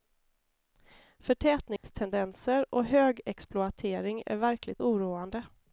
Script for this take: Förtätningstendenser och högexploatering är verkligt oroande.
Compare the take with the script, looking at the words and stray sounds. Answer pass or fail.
fail